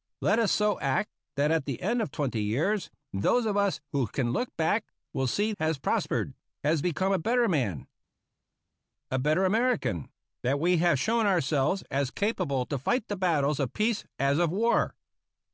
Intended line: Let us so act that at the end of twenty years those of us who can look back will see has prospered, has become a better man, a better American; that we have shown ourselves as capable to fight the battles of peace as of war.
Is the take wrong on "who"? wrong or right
right